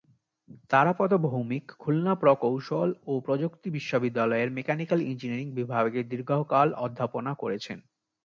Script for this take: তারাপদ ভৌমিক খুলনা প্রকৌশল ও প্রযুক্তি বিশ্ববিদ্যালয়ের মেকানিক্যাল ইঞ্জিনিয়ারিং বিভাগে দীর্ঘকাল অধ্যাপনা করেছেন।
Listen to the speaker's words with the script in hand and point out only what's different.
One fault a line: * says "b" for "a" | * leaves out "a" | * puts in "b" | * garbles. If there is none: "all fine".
all fine